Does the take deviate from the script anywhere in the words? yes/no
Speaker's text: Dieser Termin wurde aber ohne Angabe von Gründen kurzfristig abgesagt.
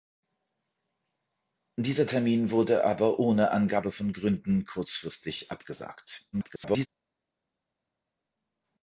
yes